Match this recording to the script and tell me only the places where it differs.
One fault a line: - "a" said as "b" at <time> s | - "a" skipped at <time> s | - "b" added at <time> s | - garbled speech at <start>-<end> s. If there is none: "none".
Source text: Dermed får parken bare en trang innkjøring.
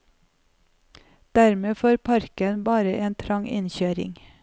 none